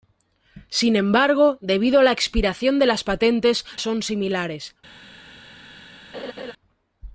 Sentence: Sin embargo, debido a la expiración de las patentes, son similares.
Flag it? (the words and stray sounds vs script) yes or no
yes